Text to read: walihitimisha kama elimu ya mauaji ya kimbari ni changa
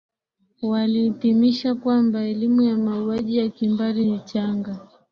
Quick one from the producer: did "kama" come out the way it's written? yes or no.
no